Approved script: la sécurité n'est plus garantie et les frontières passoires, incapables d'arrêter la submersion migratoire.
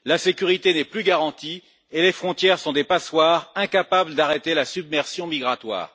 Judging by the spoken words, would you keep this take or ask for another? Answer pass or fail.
fail